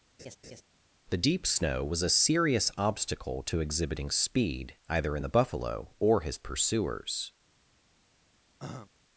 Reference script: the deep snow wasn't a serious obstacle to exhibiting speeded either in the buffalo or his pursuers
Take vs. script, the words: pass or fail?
fail